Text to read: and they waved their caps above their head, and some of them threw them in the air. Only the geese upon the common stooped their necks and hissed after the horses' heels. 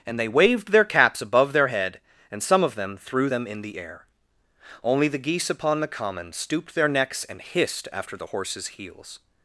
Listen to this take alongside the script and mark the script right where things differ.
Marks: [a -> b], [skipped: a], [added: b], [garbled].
and they waved their caps above their head, and some of them threw them in the air. Only the geese upon the common stooped their necks and hissed after the horses' heels.